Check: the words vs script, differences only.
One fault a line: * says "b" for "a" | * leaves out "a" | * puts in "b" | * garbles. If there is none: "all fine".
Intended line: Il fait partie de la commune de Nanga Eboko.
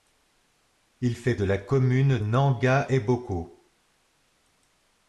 * leaves out "partie"
* leaves out "de"